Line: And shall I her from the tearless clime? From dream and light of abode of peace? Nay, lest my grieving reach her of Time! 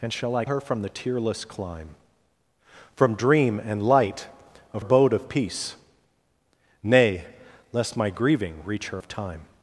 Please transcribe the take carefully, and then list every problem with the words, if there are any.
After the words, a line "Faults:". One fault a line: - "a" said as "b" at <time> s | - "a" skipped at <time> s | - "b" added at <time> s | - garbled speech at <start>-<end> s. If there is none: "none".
And shall I her from the tearless clime? From dream and light of abode of peace? Nay, lest my grieving reach her of Time!
Faults:
none